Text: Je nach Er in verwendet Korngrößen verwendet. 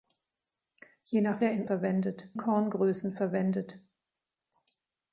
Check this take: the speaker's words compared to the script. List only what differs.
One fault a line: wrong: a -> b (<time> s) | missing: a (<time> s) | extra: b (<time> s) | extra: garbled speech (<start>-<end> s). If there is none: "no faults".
no faults